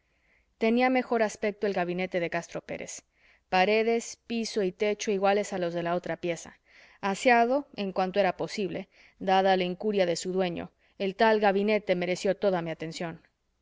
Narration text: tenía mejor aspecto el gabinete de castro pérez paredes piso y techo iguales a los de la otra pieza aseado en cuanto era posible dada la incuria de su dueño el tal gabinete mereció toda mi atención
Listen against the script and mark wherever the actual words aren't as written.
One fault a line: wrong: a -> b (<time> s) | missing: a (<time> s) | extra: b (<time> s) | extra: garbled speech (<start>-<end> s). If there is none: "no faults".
no faults